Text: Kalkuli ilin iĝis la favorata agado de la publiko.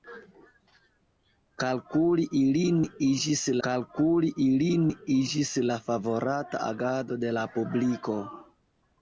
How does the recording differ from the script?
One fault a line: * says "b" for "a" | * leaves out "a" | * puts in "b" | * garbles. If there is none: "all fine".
* puts in "kalkuli ilin iĝis"